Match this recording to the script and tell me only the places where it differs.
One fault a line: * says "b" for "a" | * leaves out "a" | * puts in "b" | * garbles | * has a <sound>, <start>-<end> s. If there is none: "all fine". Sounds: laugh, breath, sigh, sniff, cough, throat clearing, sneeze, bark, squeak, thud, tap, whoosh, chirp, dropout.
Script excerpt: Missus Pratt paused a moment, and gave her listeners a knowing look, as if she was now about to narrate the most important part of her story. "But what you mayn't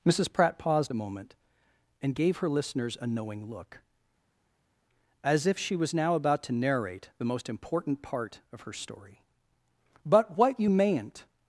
all fine